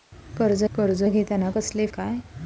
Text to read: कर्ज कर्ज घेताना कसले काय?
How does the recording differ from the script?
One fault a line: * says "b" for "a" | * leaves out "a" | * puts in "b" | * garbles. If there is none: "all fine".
all fine